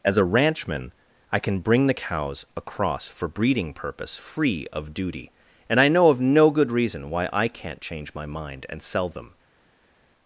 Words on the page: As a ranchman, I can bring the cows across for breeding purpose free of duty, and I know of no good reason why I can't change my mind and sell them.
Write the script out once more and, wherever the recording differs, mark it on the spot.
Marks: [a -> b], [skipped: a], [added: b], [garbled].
As a ranchman, I can bring the cows across for breeding purpose free of duty, and I know of no good reason why I can't change my mind and sell them.